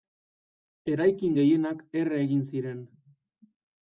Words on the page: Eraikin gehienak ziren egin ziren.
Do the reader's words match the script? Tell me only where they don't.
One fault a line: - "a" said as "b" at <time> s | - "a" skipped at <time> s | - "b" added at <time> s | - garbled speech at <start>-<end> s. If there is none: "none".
- "ziren" said as "erre" at 2.0 s